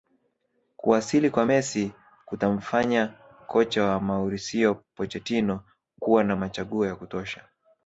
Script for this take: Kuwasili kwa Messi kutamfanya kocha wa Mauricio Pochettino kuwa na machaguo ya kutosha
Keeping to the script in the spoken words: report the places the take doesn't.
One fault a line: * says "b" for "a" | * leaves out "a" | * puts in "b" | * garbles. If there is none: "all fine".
all fine